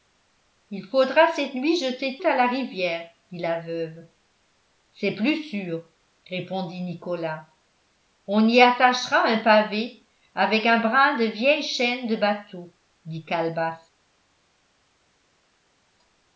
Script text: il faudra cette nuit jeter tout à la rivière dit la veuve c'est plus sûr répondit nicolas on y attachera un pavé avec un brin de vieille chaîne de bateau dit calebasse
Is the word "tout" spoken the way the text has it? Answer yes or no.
no